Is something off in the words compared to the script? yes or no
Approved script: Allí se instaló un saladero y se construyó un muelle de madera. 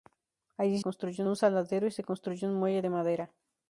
yes